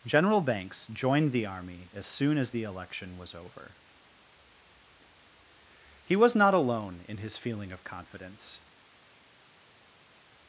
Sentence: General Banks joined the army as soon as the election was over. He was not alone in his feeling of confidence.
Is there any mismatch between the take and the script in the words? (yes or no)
no